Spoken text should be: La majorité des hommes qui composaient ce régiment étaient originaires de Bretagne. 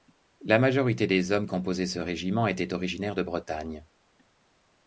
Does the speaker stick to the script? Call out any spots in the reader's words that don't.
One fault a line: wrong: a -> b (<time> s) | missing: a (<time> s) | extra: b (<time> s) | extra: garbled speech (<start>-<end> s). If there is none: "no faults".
missing: qui (1.4 s)